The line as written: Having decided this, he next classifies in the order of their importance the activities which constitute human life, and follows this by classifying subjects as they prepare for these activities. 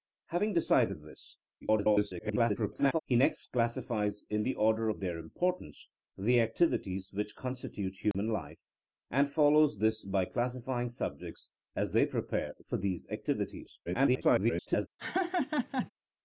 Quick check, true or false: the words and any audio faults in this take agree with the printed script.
false